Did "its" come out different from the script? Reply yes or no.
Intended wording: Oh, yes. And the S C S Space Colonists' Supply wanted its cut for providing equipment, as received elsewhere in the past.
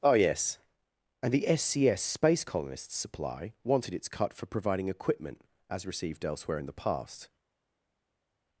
no